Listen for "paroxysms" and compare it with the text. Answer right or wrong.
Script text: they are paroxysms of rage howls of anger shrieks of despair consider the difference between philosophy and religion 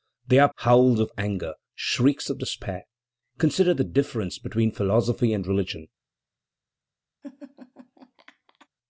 wrong